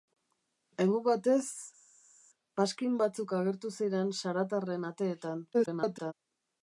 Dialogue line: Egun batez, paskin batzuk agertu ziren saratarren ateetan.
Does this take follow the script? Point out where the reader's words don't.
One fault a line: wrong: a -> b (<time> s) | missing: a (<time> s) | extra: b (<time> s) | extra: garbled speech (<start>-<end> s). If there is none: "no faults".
extra: garbled speech (5.5-6.1 s)